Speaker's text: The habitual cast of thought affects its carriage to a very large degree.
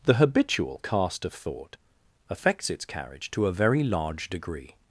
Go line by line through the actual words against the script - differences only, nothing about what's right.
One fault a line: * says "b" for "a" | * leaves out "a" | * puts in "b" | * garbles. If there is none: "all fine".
all fine